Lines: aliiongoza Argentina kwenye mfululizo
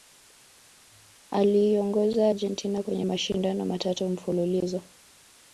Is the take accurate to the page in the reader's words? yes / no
no